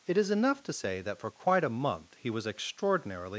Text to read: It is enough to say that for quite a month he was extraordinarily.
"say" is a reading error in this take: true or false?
false